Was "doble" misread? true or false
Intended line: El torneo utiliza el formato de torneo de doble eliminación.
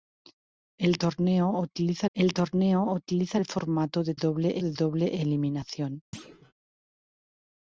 false